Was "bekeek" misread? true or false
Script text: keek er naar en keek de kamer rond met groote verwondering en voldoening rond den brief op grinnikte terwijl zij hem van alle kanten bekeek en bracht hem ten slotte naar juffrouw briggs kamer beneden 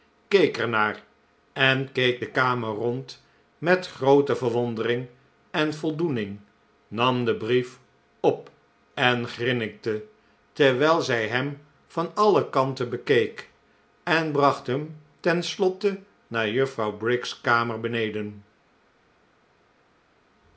false